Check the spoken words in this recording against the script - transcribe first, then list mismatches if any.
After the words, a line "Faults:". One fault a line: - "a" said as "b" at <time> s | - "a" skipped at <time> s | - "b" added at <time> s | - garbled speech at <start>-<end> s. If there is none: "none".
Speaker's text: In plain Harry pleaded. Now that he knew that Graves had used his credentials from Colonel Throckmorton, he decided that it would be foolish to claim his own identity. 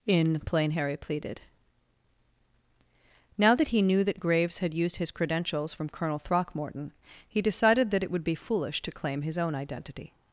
In plain Harry pleaded. Now that he knew that Graves had used his credentials from Colonel Throckmorton, he decided that it would be foolish to claim his own identity.
Faults:
none